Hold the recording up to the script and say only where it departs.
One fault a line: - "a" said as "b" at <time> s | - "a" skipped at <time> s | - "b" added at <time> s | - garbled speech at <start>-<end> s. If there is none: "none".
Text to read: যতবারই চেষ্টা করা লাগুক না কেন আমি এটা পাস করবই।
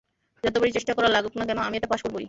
none